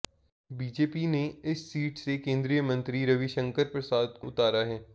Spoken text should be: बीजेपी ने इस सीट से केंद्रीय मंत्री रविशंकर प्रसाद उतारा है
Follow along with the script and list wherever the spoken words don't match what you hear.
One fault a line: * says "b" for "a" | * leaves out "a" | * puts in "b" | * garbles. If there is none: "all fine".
all fine